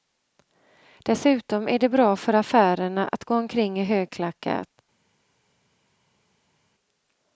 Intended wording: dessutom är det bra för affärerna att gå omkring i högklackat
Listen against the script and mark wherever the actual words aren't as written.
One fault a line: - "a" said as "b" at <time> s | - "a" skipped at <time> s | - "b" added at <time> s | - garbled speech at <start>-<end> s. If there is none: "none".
none